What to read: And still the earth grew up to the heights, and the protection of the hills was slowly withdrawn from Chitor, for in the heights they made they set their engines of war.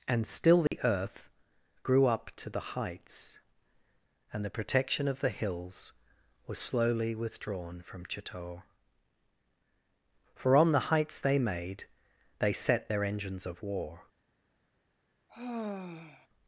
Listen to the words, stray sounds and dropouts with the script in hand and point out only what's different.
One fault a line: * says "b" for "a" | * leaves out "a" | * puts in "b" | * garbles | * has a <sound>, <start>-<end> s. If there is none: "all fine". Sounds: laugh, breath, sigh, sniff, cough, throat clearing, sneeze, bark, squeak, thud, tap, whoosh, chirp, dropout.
* has a dropout, 0.7-0.7 s
* says "on" for "in"
* has a sigh, 15.3-16.3 s